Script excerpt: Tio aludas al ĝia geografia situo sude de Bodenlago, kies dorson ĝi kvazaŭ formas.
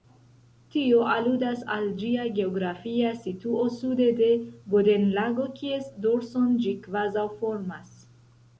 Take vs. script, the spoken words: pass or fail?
pass